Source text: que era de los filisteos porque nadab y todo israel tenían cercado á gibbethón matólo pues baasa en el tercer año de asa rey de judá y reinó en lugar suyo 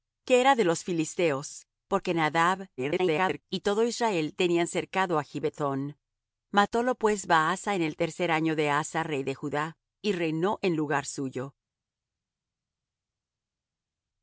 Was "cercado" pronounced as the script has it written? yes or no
yes